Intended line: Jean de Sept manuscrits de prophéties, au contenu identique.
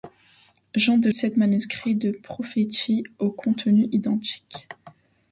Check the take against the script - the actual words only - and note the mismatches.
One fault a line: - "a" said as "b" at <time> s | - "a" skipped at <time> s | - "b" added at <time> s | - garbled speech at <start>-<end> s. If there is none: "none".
none